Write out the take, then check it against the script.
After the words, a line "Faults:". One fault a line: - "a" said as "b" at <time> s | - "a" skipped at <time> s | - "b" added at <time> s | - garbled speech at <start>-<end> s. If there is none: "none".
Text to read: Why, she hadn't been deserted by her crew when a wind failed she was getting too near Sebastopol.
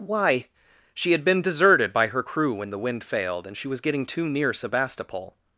Why, she had been deserted by her crew when the wind failed and she was getting too near Sebastopol.
Faults:
- "hadn't" said as "had" at 1.1 s
- "a" said as "the" at 2.7 s
- "and" added at 3.4 s